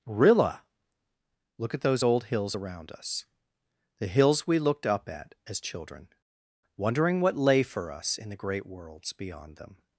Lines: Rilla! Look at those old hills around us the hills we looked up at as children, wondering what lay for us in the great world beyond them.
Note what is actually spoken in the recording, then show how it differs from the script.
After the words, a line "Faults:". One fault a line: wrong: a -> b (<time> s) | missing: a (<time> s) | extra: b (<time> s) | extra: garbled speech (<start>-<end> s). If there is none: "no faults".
Rilla! Look at those old hills around us the hills we looked up at as children, wondering what lay for us in the great worlds beyond them.
Faults:
wrong: world -> worlds (8.7 s)